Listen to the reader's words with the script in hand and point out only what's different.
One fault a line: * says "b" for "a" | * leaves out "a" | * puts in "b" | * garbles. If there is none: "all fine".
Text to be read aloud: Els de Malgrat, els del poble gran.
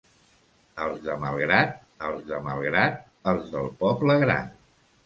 * puts in "de Malgrat els"